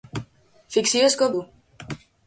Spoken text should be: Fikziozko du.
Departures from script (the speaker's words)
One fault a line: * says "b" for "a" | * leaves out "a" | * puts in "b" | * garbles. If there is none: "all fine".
all fine